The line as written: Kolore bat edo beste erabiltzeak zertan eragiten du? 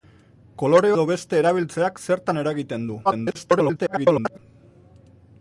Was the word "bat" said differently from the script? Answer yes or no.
yes